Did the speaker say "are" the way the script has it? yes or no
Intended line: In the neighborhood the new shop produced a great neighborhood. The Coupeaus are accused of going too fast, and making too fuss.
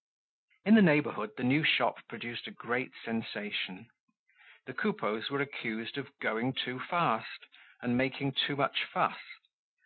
no